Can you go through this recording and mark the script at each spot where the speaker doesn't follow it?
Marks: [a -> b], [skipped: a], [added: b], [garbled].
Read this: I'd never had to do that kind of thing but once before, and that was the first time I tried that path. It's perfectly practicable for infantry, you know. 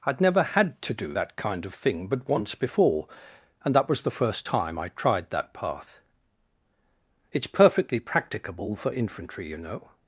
I'd never had to do that kind of thing but once before, and that was the first time I tried that path. It's perfectly practicable for infantry, you know.